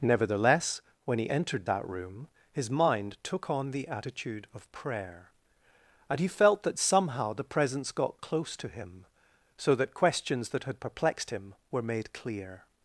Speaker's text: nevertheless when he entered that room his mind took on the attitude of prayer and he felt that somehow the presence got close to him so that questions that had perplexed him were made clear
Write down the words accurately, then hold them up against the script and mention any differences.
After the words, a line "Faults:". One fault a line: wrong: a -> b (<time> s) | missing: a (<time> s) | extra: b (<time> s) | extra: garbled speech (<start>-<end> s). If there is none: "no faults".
nevertheless when he entered that room his mind took on the attitude of prayer and he felt that somehow the presence got close to him so that questions that had perplexed him were made clear
Faults:
no faults